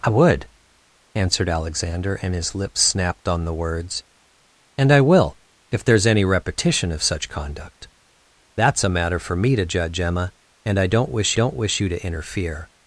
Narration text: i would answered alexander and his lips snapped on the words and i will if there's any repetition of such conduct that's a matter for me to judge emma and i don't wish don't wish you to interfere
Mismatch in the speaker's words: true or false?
false